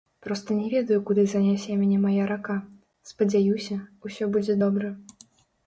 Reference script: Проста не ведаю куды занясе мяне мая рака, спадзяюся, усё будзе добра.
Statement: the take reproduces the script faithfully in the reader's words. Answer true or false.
true